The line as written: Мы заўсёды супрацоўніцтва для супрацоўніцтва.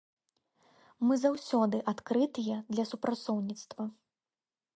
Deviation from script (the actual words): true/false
true